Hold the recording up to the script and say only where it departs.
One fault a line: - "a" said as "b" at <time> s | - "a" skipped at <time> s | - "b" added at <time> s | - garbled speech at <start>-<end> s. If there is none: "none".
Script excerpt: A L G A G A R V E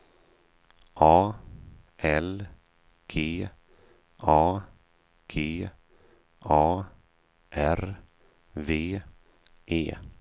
none